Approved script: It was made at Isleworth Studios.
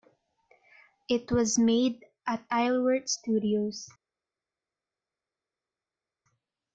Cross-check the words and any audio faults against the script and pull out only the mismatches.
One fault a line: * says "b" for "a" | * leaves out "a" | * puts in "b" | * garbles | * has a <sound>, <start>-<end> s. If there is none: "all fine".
all fine